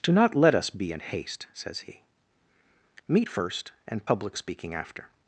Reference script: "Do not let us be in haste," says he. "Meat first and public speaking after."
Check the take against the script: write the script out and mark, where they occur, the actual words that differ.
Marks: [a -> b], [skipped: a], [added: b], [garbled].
"Do not let us be in haste," says he. "Meat first and public speaking after."